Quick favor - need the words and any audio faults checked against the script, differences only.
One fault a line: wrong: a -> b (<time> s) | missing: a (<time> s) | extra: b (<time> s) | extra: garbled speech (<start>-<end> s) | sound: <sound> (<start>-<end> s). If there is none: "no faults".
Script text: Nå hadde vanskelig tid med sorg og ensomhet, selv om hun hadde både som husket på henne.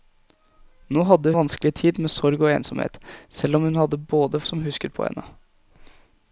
no faults